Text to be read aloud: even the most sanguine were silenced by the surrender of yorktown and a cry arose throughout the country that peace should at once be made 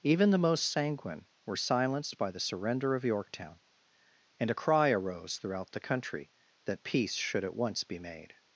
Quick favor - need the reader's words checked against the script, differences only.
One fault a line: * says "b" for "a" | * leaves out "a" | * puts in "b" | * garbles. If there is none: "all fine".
all fine